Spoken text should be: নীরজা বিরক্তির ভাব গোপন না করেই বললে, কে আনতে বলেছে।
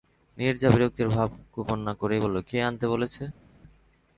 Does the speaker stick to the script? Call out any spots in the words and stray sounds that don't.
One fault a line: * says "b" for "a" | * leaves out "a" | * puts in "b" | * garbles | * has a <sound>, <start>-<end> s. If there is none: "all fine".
all fine